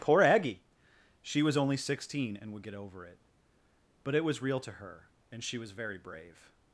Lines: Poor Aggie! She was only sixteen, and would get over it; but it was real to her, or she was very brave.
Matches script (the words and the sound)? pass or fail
fail